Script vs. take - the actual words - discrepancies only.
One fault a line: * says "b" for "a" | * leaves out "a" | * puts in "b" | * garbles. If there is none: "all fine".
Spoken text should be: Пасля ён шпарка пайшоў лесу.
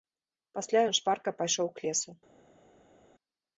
* puts in "к"